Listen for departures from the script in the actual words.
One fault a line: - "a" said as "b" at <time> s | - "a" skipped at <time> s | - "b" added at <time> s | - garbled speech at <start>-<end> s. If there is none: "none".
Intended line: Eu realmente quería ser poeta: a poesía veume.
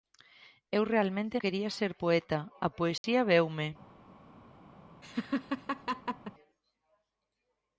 none